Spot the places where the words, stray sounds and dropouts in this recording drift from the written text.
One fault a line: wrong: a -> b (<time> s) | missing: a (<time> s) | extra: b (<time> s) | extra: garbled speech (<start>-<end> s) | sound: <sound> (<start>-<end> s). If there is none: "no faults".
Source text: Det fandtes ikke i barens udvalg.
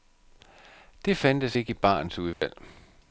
sound: dropout (2.3-2.4 s)